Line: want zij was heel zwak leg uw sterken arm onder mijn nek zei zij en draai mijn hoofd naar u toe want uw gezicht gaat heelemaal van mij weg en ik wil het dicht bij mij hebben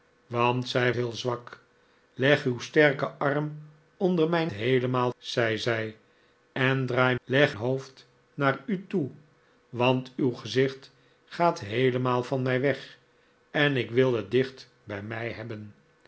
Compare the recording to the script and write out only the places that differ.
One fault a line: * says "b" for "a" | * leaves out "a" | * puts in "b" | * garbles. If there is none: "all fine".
* leaves out "was"
* says "heelemaal" for "nek"
* says "leg" for "mijn"